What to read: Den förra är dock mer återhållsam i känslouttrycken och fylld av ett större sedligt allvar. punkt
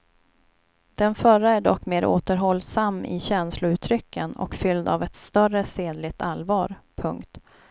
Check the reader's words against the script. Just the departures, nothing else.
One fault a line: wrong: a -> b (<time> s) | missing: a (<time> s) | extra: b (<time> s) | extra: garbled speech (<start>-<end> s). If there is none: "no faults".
no faults